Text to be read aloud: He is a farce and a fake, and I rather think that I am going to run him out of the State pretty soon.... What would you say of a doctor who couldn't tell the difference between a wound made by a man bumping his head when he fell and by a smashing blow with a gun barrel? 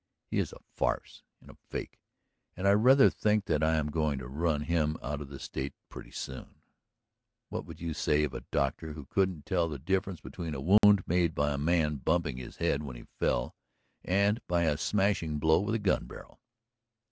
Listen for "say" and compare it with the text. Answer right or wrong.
right